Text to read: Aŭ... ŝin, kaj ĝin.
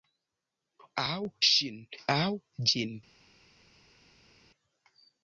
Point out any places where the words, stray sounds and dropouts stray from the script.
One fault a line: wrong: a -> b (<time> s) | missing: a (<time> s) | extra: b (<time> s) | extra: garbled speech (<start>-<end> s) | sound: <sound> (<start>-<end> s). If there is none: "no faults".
wrong: kaj -> aŭ (2.2 s)